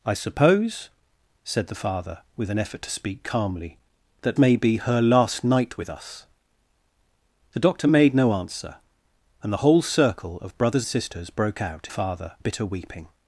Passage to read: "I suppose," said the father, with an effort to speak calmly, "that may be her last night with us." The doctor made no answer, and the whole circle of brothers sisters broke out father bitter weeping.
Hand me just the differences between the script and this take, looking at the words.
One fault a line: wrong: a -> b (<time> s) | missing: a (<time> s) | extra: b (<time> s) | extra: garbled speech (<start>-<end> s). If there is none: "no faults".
no faults